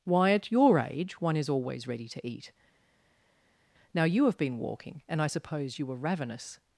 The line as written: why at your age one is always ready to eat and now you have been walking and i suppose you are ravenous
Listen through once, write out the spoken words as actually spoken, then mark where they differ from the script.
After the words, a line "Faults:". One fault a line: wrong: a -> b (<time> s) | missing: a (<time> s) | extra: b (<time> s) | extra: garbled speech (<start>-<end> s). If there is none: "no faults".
why at your age one is always ready to eat now you have been walking and i suppose you were ravenous
Faults:
missing: and (2.5 s)
wrong: are -> were (5.9 s)